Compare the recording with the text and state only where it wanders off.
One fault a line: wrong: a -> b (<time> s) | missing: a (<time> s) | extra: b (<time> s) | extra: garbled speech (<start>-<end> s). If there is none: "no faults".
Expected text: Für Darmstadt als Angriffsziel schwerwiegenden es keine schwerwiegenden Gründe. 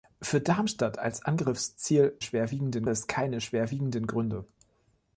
no faults